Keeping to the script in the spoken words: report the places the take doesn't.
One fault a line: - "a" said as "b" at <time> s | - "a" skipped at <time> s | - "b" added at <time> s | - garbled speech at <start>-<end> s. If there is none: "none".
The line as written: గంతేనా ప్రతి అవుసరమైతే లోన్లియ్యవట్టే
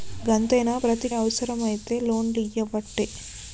none